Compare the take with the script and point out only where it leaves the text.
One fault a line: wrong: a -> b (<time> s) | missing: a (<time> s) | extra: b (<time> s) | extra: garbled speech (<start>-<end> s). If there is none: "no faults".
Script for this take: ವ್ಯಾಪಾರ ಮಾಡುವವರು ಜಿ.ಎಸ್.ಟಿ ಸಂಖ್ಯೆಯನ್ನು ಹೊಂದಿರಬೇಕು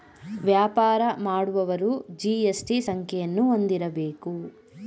no faults